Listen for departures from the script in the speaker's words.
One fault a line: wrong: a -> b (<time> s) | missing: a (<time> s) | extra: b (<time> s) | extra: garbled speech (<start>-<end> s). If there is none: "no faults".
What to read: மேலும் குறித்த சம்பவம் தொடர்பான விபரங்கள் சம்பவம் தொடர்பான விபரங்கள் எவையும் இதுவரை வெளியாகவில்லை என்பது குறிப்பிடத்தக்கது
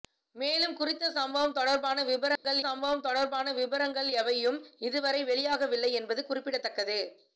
no faults